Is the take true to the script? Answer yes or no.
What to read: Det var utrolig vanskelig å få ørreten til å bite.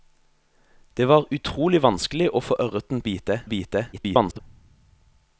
no